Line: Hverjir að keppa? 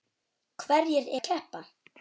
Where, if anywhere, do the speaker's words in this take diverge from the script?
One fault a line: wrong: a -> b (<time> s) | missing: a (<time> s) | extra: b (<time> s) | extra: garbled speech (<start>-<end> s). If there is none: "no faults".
no faults